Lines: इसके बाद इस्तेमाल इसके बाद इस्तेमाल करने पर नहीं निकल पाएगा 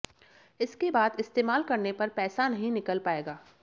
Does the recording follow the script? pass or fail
fail